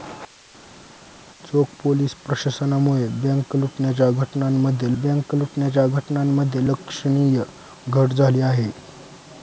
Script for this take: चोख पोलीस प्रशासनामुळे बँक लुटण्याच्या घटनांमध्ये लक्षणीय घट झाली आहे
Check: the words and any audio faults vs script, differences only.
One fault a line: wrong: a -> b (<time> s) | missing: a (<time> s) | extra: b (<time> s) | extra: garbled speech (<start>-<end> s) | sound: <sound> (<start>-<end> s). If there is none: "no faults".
extra: बँक लुटण्याच्या घटनांमध्ये (5.0 s)